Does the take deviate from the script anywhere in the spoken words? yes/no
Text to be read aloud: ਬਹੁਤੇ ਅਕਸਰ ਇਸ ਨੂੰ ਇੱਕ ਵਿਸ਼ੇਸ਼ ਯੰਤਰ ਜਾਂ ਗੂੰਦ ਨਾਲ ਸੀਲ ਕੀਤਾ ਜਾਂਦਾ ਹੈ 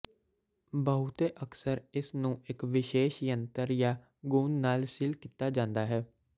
no